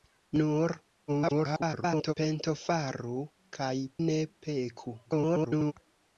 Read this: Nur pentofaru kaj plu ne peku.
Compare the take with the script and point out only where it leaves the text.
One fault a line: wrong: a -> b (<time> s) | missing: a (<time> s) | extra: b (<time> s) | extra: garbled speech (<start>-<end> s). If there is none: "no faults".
extra: garbled speech (1.1-2.1 s)
missing: plu (3.7 s)
extra: garbled speech (5.0-5.7 s)